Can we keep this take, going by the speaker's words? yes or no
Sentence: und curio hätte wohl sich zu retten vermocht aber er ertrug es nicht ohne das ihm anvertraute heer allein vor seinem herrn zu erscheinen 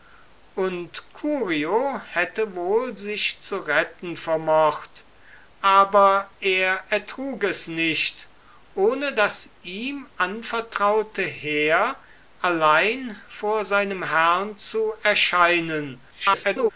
no